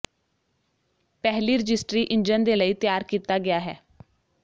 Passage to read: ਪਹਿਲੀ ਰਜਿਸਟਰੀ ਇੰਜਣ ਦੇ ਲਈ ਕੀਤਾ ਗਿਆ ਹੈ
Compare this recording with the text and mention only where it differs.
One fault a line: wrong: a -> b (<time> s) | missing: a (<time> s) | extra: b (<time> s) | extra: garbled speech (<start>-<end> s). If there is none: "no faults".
extra: ਤਿਆਰ (2.7 s)